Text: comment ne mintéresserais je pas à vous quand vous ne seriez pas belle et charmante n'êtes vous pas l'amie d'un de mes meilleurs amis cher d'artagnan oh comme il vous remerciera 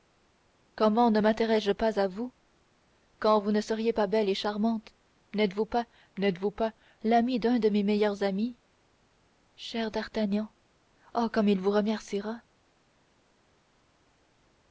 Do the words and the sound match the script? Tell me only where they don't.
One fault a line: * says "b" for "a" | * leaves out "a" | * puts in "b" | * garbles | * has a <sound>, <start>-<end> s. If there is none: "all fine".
* puts in "n'êtes vous pas"